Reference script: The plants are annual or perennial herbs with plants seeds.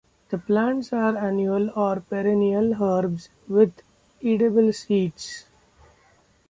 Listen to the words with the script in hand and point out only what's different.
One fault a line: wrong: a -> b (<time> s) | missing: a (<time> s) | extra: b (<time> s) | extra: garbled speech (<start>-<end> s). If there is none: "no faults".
wrong: plants -> edible (4.2 s)